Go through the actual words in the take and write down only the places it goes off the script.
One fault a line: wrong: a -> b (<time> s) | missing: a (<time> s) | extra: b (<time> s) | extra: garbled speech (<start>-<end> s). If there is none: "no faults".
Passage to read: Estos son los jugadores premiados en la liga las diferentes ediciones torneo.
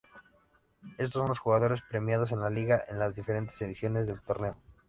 extra: en (2.9 s)
extra: del (4.1 s)